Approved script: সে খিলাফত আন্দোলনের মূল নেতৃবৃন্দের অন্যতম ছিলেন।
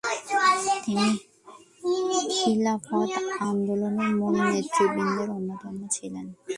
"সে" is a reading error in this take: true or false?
true